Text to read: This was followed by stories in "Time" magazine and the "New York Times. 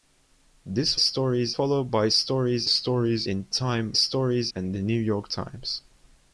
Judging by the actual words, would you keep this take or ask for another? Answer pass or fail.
fail